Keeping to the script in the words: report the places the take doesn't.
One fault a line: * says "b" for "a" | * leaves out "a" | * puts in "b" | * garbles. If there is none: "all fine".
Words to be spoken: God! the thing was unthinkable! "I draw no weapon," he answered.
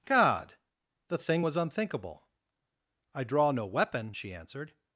* says "she" for "he"